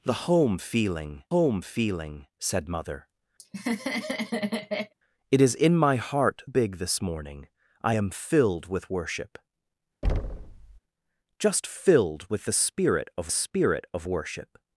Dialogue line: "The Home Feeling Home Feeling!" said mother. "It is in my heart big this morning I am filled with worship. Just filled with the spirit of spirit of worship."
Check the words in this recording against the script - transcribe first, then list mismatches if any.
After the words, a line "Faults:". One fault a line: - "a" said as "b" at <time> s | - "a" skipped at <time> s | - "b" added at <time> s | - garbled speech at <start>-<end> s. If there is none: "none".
"The Home Feeling Home Feeling!" said mother. "It is in my heart big this morning I am filled with worship. Just filled with the spirit of spirit of worship."
Faults:
none